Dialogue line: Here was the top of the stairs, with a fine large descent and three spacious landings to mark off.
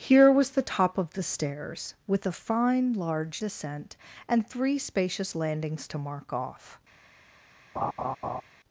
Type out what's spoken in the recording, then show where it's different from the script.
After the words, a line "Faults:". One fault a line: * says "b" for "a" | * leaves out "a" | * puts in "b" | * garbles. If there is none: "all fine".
Here was the top of the stairs, with a fine large descent and three spacious landings to mark off.
Faults:
all fine